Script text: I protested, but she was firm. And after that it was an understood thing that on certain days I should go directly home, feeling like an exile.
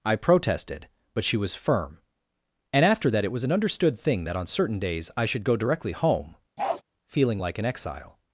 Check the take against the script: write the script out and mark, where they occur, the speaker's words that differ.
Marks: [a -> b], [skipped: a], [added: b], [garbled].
I protested, but she was firm. And after that it was an understood thing that on certain days I should go directly home, feeling like an exile.